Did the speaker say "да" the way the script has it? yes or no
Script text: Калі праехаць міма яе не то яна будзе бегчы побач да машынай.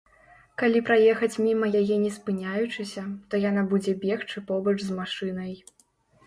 no